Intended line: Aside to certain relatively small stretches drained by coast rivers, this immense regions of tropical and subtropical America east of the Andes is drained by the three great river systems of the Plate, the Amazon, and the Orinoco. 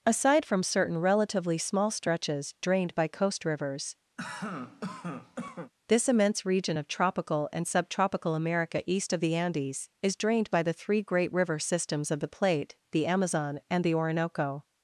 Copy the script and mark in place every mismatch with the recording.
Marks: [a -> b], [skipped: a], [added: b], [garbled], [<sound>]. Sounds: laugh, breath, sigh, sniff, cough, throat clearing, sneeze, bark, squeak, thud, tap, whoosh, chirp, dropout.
Aside [to -> from] certain relatively small stretches drained by coast rivers, [cough] this immense [regions -> region] of tropical and subtropical America east of the Andes is drained by the three great river systems of the Plate, the Amazon, and the Orinoco.